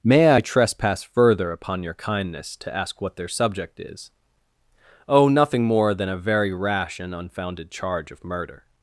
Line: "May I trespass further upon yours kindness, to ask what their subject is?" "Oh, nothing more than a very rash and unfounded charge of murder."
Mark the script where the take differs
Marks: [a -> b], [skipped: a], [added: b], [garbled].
"May I trespass further upon [yours -> your] kindness, to ask what their subject is?" "Oh, nothing more than a very rash and unfounded charge of murder."